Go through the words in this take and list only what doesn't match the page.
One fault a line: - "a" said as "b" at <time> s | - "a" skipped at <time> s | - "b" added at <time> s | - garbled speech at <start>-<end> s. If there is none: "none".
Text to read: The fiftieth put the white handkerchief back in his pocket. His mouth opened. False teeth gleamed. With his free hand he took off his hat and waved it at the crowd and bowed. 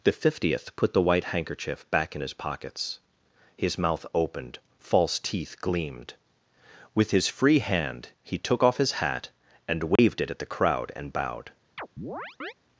- "pocket" said as "pockets" at 2.3 s